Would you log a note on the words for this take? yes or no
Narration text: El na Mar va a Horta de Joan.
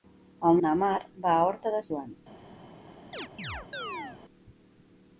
no